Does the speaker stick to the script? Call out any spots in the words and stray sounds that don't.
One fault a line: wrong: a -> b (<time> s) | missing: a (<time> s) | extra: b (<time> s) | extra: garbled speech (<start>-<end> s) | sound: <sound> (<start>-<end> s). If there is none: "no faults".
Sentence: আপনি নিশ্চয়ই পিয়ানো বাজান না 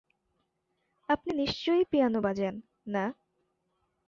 no faults